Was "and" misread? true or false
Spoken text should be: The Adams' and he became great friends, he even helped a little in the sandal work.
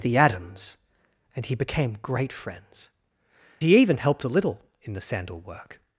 false